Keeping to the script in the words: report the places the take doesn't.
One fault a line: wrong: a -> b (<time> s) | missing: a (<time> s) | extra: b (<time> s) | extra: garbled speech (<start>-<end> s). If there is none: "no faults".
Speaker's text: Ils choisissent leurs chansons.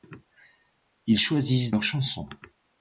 no faults